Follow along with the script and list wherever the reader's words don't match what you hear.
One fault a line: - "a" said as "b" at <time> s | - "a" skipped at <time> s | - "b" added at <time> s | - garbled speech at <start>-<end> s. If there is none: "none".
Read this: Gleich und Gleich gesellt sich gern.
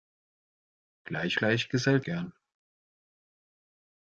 - "und" skipped at 1.4 s
- "sich" skipped at 2.0 s